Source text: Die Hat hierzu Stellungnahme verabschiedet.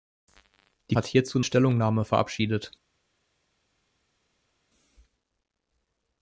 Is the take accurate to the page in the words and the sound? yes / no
yes